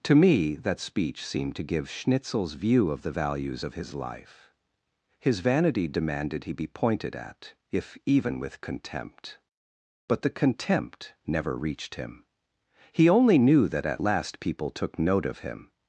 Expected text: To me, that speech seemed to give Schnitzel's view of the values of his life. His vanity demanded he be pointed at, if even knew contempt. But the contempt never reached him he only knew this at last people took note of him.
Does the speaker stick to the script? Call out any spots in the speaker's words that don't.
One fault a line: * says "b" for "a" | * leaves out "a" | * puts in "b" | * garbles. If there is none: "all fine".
* says "with" for "knew"
* says "that" for "this"